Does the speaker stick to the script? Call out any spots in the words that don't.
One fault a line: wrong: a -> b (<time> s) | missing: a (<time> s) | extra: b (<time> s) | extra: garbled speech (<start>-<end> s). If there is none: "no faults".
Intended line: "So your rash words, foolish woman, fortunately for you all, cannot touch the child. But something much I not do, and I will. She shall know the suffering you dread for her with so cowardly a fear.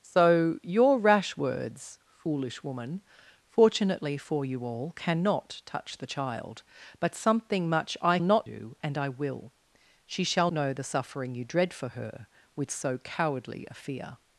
no faults